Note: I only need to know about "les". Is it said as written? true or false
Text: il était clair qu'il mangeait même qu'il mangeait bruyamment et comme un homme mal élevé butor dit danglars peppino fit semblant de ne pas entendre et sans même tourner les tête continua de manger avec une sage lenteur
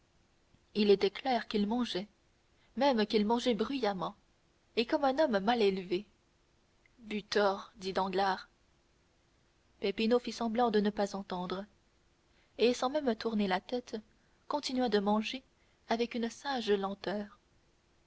false